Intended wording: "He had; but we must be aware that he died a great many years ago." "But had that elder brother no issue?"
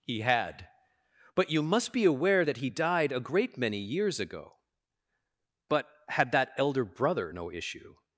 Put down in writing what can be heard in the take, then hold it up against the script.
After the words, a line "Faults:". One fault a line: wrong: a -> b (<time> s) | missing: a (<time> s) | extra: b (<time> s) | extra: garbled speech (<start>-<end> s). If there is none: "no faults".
"He had; but you must be aware that he died a great many years ago." "But had that elder brother no issue?"
Faults:
wrong: we -> you (1.5 s)